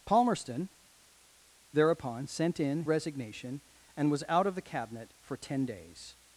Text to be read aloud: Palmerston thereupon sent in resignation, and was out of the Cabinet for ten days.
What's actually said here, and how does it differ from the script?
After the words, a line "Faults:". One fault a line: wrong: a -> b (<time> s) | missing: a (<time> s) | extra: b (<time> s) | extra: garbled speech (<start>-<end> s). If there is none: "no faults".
Palmerston thereupon sent in resignation, and was out of the Cabinet for ten days.
Faults:
no faults